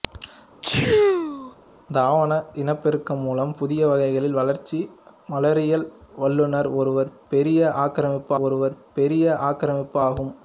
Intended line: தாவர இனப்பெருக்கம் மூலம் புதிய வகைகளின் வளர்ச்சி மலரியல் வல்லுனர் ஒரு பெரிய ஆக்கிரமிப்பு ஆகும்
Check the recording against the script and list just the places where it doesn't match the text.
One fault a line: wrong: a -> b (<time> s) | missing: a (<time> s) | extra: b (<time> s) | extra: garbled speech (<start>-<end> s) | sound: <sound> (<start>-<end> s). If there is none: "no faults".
sound: sneeze (0.6-1.5 s)
extra: ஒரு பெரிய ஆக்கிரமிப்பு (8.4 s)